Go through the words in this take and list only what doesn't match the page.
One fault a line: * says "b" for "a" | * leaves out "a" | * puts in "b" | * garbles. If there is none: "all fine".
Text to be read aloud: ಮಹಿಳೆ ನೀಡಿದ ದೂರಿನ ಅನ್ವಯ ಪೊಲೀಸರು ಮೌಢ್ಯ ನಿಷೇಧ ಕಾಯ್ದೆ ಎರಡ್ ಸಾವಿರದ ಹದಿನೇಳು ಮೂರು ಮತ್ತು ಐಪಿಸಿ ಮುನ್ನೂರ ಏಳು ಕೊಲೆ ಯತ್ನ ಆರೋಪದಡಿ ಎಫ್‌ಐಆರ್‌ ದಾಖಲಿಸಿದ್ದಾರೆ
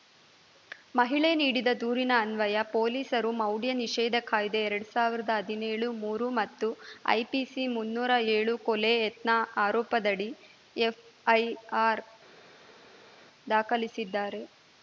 all fine